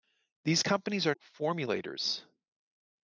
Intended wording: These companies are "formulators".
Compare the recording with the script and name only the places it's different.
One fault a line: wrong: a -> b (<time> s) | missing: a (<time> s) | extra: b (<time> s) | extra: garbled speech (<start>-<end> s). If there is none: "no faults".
no faults